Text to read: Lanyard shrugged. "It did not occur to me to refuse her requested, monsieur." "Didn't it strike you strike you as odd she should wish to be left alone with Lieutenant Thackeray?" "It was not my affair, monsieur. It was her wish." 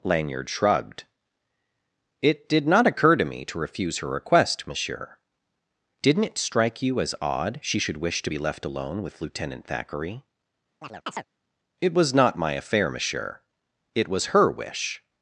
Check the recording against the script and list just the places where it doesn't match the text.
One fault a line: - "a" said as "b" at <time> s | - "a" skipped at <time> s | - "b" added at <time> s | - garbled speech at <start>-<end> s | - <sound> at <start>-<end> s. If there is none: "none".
- "requested" said as "request" at 4.1 s
- "strike you" skipped at 7.0 s
- chirp at 10.8-11.3 s